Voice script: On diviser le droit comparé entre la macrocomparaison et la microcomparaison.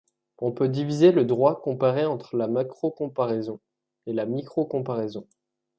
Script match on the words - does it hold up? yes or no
no